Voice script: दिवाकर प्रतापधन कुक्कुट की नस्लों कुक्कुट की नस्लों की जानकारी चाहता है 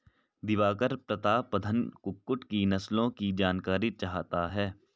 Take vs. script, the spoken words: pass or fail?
fail